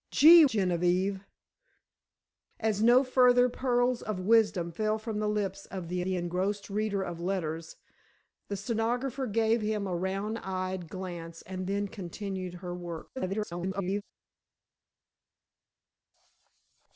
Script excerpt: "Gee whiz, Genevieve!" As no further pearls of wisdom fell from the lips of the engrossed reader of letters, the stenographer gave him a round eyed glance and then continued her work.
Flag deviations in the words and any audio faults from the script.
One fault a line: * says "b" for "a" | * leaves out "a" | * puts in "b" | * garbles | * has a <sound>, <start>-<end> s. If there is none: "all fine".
* leaves out "whiz"
* puts in "the"
* garbles